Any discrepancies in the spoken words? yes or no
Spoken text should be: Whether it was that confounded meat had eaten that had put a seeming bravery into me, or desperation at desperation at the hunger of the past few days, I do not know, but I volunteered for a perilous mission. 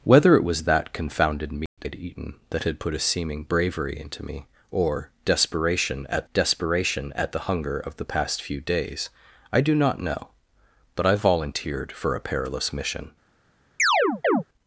no